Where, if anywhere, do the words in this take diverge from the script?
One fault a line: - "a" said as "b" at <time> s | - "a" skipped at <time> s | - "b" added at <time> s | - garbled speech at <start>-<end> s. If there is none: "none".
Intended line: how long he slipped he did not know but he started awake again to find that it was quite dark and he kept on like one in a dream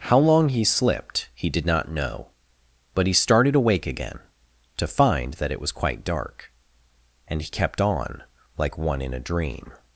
none